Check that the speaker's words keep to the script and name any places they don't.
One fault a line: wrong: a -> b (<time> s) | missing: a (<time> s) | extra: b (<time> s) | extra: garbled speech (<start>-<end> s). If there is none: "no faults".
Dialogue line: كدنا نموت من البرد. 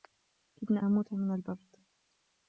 no faults